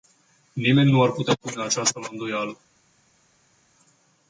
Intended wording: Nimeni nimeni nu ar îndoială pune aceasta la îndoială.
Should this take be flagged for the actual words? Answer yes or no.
yes